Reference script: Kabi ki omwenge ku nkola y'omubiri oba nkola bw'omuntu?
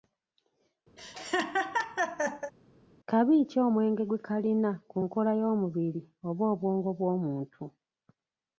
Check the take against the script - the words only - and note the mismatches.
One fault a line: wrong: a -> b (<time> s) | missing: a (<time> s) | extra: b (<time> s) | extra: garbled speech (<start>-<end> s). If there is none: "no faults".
extra: gwe kalina (4.1 s)
wrong: nkola -> obwongo (6.5 s)